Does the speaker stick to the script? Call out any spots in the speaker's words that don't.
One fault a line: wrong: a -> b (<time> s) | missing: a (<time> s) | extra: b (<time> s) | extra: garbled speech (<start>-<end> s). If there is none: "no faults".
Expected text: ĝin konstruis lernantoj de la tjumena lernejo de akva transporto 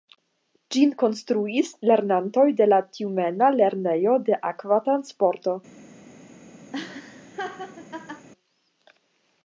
no faults